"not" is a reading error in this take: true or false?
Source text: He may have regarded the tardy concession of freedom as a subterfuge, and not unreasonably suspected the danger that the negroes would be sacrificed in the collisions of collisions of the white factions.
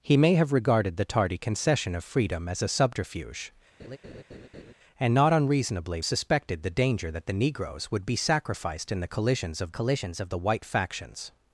false